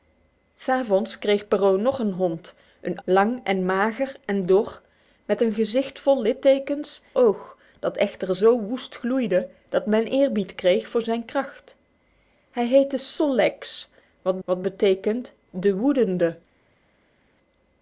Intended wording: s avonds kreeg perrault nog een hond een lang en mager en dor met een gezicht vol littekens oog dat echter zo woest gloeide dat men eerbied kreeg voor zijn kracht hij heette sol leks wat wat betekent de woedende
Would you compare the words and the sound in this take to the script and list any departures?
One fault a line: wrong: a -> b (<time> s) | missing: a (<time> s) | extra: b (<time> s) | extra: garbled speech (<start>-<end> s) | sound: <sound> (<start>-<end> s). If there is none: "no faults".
no faults